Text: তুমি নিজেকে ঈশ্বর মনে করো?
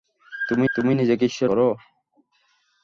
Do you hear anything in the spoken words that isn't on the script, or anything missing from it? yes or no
yes